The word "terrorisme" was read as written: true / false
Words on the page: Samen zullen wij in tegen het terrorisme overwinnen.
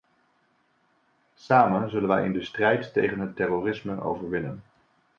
true